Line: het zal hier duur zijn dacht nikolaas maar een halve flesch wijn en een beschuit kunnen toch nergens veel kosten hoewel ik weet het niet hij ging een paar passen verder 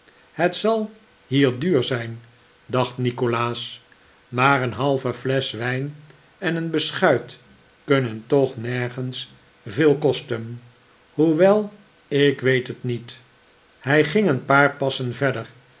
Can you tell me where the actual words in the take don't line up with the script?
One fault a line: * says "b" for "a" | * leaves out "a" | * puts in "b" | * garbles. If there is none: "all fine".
all fine